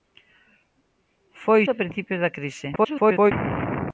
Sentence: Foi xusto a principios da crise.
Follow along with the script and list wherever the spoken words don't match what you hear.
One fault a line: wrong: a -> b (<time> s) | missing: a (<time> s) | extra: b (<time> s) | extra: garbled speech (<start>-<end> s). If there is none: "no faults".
missing: xusto (1.6 s)
extra: garbled speech (2.8-3.3 s)